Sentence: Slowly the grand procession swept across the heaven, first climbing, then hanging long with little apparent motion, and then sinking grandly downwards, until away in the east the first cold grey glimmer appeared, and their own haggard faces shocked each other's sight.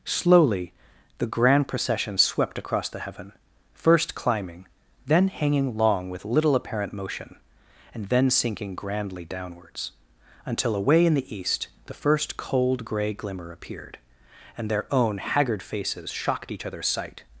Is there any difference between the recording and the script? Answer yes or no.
no